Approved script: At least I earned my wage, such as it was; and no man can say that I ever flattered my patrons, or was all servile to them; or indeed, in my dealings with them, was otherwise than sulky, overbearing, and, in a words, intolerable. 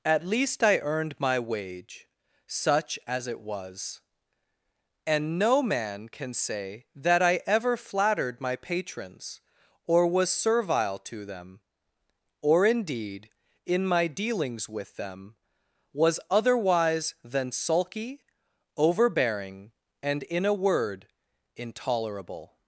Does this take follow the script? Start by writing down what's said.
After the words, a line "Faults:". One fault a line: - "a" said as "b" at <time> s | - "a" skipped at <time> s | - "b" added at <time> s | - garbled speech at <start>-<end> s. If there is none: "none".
At least I earned my wage, such as it was; and no man can say that I ever flattered my patrons, or was servile to them; or indeed, in my dealings with them, was otherwise than sulky, overbearing, and, in a word, intolerable.
Faults:
- "all" skipped at 10.3 s
- "words" said as "word" at 20.5 s